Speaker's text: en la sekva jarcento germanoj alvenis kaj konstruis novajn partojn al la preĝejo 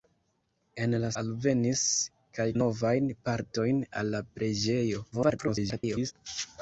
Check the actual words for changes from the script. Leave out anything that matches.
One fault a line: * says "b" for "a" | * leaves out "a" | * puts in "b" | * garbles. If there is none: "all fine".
* leaves out "sekva jarcento germanoj"
* leaves out "konstruis"
* garbles